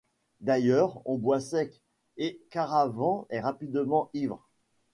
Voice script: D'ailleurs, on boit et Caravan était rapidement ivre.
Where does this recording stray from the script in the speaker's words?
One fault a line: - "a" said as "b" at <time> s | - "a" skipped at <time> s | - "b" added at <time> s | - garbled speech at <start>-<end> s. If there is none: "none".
- "sec" added at 1.4 s
- "était" said as "est" at 3.3 s